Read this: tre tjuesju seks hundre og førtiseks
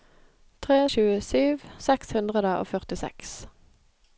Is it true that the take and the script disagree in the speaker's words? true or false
false